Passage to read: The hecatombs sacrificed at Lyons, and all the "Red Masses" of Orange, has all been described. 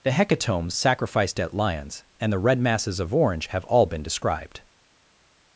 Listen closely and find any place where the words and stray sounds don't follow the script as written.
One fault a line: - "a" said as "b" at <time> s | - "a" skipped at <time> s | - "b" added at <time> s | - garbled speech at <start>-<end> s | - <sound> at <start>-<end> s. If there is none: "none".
- "all" skipped at 2.3 s
- "has" said as "have" at 3.5 s